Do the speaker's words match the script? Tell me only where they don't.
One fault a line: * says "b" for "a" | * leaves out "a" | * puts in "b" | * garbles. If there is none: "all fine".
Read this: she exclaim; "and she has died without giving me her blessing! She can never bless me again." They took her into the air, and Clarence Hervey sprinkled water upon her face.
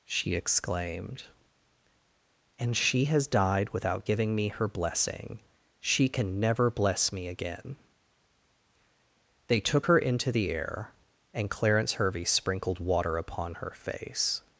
* says "exclaimed" for "exclaim"